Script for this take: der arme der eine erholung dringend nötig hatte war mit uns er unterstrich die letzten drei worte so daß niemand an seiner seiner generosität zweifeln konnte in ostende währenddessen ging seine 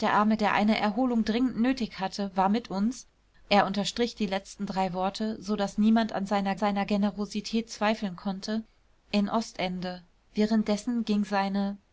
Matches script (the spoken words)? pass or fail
pass